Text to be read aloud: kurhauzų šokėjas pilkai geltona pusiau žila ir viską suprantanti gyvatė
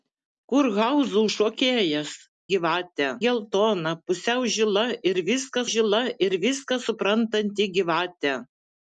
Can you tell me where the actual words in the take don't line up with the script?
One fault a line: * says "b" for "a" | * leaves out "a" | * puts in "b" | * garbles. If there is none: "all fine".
* says "gyvatė" for "pilkai"
* puts in "žila ir viską"